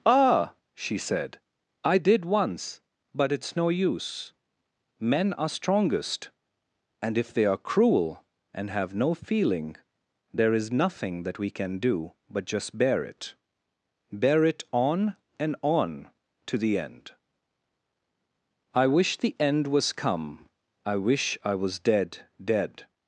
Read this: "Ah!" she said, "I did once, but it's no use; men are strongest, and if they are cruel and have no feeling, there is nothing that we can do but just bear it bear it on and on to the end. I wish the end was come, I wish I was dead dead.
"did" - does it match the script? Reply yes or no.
yes